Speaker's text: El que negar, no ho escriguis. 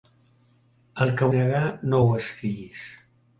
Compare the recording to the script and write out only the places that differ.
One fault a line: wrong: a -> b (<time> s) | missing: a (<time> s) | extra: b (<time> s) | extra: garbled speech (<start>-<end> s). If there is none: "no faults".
no faults